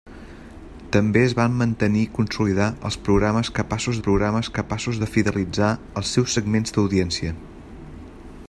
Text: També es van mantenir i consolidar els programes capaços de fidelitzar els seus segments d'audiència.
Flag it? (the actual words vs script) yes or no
yes